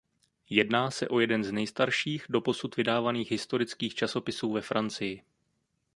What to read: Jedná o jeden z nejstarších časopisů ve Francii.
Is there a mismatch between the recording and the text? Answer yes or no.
yes